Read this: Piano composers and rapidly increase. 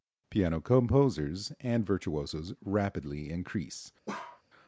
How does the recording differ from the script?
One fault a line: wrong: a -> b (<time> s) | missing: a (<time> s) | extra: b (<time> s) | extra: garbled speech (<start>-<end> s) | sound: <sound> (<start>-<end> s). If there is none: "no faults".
extra: virtuosos (1.9 s)
sound: bark (4.1-4.4 s)